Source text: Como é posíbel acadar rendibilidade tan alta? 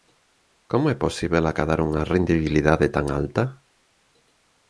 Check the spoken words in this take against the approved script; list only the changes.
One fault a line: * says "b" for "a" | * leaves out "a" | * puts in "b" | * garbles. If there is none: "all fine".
* puts in "unha"